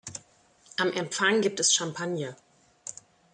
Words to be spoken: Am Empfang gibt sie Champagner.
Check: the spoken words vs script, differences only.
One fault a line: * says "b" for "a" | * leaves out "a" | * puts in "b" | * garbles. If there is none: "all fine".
* says "es" for "sie"